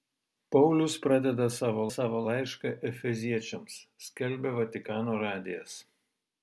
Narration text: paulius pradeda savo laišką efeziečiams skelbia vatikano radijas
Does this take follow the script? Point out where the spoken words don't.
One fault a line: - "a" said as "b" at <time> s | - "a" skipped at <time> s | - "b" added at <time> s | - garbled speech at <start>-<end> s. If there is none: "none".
- "savo" added at 1.9 s